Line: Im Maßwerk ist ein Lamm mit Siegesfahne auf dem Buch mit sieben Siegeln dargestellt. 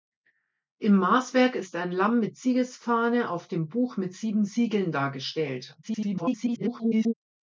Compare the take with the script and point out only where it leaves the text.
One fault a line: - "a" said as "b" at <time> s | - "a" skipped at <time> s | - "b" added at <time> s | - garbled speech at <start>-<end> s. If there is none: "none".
- garbled speech at 5.8-7.1 s